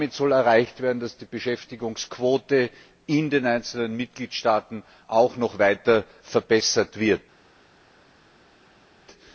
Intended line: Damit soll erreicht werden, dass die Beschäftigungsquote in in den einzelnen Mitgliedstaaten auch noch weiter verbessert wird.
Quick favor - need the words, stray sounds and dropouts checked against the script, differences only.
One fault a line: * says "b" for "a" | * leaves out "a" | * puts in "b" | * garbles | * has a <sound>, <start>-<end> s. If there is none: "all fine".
* leaves out "in"